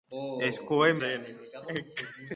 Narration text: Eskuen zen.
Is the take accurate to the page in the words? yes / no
yes